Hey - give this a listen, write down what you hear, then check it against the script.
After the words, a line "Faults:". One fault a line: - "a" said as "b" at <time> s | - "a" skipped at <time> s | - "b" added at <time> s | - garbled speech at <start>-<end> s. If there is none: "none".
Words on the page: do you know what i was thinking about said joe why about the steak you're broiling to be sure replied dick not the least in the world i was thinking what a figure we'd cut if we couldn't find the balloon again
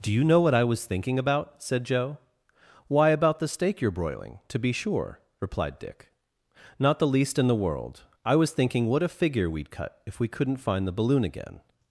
do you know what i was thinking about said joe why about the steak you're broiling to be sure replied dick not the least in the world i was thinking what a figure we'd cut if we couldn't find the balloon again
Faults:
none